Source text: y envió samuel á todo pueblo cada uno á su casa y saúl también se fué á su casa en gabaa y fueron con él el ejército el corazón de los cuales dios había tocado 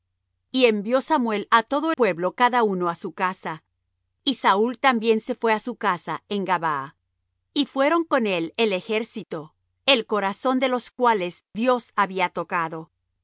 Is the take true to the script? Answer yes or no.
yes